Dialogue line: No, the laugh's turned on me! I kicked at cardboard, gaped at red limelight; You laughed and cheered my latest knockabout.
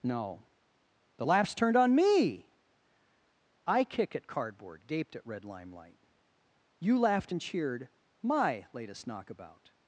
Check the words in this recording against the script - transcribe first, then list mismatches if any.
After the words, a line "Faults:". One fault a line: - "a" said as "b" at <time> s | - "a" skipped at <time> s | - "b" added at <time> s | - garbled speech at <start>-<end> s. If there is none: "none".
No, the laugh's turned on me! I kick at cardboard, gaped at red limelight; You laughed and cheered my latest knockabout.
Faults:
- "kicked" said as "kick" at 3.8 s